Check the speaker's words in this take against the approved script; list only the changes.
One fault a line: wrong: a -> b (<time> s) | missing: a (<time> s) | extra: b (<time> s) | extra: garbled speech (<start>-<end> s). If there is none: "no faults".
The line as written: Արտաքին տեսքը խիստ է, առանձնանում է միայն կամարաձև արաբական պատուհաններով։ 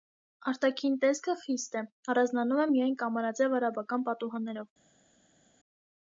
no faults